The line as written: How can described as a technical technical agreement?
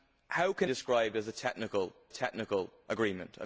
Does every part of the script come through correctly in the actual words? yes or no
yes